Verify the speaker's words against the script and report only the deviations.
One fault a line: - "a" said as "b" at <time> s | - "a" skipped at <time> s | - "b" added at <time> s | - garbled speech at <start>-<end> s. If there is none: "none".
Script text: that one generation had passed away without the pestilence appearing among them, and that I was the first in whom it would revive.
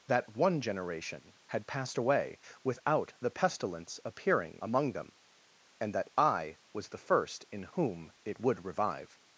none